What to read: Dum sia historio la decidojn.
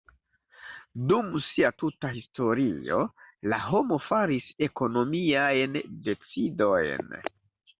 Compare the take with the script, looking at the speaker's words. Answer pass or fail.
fail